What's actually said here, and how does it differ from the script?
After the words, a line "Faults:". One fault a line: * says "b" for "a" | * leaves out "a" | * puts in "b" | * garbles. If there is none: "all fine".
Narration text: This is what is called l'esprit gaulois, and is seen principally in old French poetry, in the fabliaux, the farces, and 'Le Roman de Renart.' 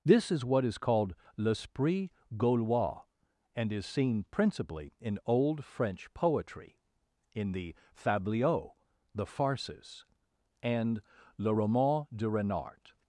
This is what is called l'esprit gaulois, and is seen principally in old French poetry, in the fabliaux, the farces, and 'Le Roman de Renart.'
Faults:
all fine